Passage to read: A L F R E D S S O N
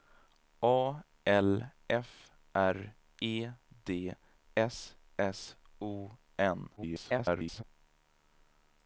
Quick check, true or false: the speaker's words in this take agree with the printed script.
false